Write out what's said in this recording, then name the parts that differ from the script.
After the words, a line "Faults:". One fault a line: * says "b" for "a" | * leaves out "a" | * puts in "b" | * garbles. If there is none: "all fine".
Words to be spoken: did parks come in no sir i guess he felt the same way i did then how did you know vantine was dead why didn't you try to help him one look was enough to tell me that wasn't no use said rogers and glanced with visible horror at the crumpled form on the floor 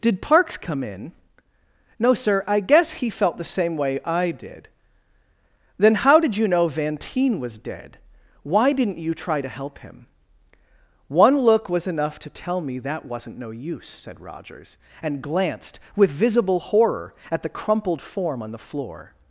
did parks come in no sir i guess he felt the same way i did then how did you know vantine was dead why didn't you try to help him one look was enough to tell me that wasn't no use said rogers and glanced with visible horror at the crumpled form on the floor
Faults:
all fine